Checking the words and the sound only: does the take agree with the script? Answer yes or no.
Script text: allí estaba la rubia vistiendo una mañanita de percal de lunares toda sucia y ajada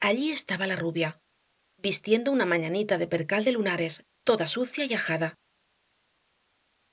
yes